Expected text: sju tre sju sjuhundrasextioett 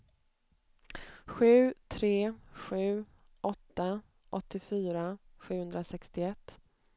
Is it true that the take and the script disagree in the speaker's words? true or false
true